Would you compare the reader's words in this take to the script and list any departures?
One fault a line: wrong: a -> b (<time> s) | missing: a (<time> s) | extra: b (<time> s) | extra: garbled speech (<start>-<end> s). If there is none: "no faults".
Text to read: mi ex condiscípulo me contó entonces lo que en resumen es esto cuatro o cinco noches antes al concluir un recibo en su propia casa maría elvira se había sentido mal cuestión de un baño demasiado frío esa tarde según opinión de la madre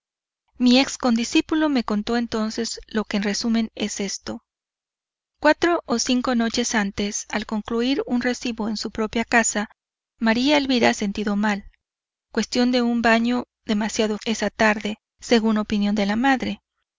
missing: se había (10.9 s)
missing: frío (14.2 s)